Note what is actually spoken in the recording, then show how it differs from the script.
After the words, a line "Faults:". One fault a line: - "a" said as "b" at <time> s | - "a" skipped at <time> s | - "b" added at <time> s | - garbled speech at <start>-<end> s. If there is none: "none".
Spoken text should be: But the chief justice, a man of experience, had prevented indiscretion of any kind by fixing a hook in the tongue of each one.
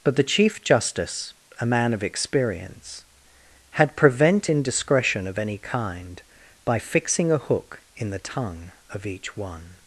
But the chief justice, a man of experience, had prevent indiscretion of any kind by fixing a hook in the tongue of each one.
Faults:
- "prevented" said as "prevent" at 4.0 s